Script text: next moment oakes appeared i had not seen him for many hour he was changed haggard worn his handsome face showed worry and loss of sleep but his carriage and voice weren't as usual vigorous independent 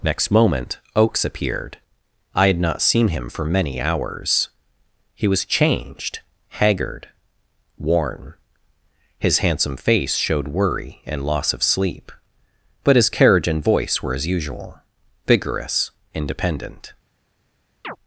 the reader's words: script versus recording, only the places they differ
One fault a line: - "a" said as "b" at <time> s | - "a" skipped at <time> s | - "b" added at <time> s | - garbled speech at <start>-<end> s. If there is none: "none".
- "hour" said as "hours" at 3.8 s
- "weren't" said as "were" at 14.0 s